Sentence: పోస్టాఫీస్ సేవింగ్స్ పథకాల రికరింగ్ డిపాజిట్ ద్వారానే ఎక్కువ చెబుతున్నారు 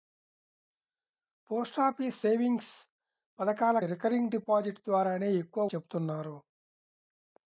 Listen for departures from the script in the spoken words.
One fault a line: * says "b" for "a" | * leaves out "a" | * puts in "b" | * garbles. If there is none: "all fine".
all fine